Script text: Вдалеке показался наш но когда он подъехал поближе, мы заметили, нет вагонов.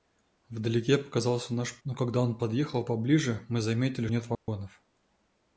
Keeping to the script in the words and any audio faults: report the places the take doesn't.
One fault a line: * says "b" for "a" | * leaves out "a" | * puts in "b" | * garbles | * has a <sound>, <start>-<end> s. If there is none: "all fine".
* has a dropout, 4.3-4.5 s